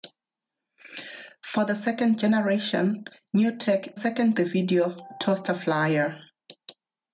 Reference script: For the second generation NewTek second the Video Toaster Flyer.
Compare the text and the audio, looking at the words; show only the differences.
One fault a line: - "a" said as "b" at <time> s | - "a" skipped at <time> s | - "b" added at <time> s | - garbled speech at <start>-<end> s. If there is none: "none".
none